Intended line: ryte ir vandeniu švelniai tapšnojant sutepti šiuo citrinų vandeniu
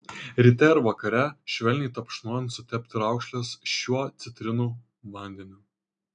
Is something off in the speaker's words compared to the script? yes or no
yes